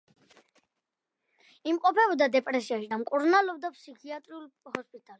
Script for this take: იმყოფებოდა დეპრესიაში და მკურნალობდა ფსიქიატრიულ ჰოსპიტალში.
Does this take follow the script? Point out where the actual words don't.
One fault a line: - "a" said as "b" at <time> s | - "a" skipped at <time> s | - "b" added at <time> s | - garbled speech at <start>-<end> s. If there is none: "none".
none